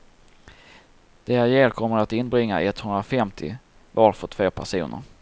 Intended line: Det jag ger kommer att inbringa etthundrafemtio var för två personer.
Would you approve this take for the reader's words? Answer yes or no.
yes